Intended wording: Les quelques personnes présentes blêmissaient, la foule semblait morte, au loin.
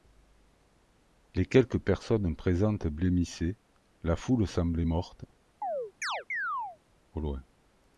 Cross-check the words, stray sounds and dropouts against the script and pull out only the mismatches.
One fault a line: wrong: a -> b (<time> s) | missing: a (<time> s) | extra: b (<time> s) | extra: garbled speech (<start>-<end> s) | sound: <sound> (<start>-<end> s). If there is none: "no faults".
sound: chirp (5.6-6.8 s)